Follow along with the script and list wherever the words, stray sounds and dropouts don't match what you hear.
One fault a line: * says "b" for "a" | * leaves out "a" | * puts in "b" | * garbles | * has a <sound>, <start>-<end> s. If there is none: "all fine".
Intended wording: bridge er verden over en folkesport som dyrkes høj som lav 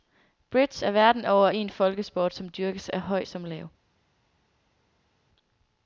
* puts in "af"